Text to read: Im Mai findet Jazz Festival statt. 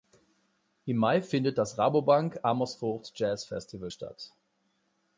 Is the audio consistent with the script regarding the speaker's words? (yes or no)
no